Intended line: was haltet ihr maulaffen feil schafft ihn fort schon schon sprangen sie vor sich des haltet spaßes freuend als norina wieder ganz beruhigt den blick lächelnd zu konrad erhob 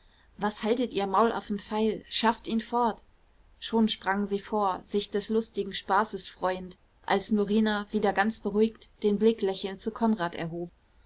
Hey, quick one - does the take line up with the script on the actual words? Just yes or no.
no